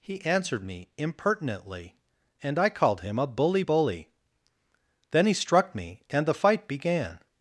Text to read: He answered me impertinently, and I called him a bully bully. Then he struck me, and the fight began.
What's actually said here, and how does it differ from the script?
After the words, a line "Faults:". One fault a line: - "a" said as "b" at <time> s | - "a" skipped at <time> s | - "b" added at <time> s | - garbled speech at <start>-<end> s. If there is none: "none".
He answered me impertinently, and I called him a bully bully. Then he struck me, and the fight began.
Faults:
none